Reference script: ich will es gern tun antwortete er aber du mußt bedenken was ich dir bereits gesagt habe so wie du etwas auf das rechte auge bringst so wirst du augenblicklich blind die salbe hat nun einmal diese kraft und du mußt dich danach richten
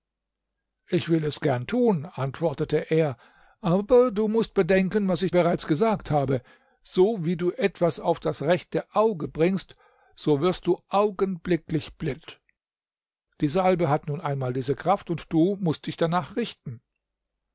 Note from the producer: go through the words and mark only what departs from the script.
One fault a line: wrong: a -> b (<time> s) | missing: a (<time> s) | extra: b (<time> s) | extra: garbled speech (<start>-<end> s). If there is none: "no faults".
missing: dir (5.3 s)